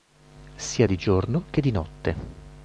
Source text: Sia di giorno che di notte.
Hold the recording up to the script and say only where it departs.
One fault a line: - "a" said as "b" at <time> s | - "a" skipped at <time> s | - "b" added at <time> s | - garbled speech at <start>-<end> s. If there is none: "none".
none